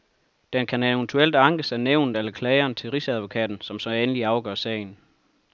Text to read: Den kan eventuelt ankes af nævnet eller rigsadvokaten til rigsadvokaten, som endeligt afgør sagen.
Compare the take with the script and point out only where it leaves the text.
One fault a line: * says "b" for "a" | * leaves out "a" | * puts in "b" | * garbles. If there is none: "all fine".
* says "klageren" for "rigsadvokaten"
* puts in "så"